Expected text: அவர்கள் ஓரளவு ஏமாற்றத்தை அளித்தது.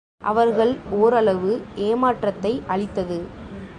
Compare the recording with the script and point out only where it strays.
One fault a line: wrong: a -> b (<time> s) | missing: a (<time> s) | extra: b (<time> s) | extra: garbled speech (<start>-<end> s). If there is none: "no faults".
no faults